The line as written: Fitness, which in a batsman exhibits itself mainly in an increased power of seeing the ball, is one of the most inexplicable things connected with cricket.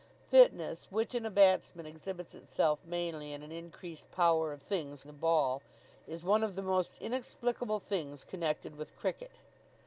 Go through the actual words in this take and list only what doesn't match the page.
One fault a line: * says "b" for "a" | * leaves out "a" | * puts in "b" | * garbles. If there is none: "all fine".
* says "things" for "seeing"